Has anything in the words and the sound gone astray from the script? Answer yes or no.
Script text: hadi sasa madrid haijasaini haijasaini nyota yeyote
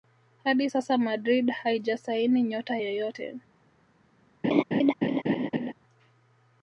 yes